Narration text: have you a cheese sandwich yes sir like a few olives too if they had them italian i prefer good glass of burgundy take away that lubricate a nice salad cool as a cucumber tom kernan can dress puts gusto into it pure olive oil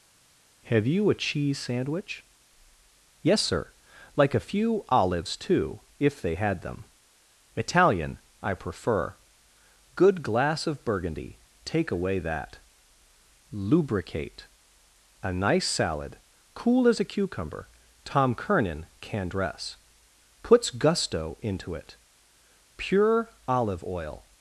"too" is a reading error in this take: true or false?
false